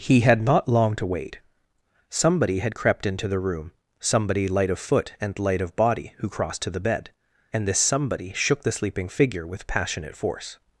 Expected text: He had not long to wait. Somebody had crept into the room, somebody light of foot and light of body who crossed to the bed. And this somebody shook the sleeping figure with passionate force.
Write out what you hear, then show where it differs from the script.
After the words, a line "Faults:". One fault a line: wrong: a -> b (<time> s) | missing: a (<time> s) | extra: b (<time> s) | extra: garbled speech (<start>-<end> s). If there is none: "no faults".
He had not long to wait. Somebody had crept into the room, somebody light of foot and light of body who crossed to the bed. And this somebody shook the sleeping figure with passionate force.
Faults:
no faults